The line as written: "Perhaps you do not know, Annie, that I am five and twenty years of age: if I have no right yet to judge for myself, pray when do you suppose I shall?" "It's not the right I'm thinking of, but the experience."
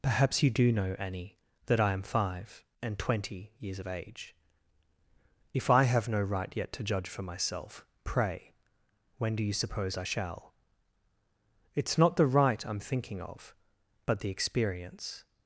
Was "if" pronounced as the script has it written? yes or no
yes